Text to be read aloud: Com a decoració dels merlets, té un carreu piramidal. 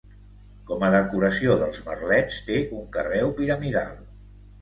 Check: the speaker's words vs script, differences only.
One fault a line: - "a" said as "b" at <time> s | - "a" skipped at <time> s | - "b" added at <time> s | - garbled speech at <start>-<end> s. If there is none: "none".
none